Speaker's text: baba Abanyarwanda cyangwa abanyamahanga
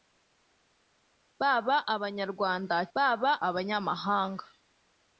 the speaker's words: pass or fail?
fail